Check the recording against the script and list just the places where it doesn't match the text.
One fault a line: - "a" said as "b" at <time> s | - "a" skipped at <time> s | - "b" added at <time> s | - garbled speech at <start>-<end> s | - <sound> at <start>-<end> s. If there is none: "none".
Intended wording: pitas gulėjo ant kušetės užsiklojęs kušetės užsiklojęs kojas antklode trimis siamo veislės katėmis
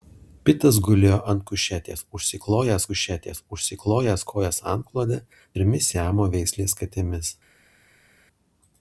none